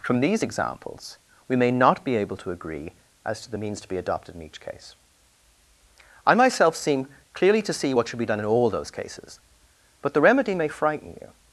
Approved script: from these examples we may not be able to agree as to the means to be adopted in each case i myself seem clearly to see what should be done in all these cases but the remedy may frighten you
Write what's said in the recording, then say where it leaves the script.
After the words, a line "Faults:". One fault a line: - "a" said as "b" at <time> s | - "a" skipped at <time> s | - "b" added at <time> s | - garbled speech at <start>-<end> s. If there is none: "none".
from these examples we may not be able to agree as to the means to be adopted in each case i myself seem clearly to see what should be done in all those cases but the remedy may frighten you
Faults:
- "these" said as "those" at 8.7 s